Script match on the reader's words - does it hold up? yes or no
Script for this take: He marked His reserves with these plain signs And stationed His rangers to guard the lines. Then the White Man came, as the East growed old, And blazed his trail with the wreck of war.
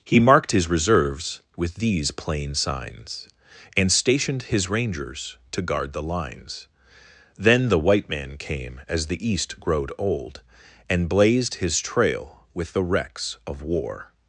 no